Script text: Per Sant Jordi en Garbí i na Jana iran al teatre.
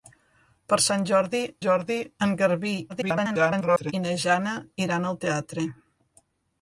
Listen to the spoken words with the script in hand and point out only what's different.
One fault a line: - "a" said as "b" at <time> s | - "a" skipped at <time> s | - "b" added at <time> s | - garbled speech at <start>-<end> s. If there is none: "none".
- "Jordi" added at 1.6 s
- garbled speech at 2.9-3.9 s